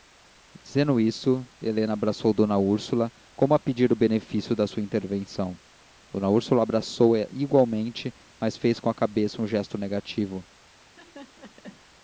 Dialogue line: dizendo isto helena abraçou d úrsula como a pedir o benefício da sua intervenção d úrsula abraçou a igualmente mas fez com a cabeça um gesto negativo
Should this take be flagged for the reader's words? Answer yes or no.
no